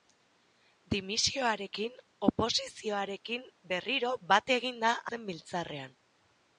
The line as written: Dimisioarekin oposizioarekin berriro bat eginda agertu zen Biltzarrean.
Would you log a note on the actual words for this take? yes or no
yes